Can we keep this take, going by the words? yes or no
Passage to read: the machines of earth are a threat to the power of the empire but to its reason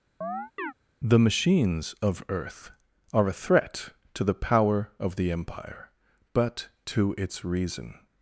yes